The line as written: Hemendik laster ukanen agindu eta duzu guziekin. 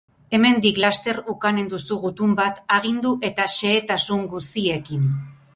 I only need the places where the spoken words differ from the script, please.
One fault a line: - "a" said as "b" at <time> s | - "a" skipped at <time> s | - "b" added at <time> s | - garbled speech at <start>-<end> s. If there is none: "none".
- "duzu gutun bat" added at 1.7 s
- "duzu" said as "xehetasun" at 3.6 s